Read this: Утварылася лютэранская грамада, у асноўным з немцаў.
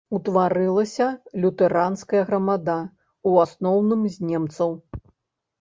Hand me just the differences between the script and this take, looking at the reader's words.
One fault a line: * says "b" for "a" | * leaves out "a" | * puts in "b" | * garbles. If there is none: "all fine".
all fine